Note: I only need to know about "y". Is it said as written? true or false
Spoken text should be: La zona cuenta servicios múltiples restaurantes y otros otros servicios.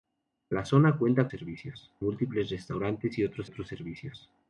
true